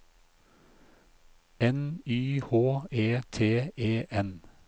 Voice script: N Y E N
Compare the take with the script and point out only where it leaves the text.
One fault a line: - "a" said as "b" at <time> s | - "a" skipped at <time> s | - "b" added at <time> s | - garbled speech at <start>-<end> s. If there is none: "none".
- "H E T" added at 2.4 s